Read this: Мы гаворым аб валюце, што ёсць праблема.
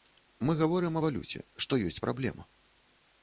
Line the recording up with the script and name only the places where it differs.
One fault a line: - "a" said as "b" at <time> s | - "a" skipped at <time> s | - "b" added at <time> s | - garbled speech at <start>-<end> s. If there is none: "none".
- "аб" skipped at 1.0 s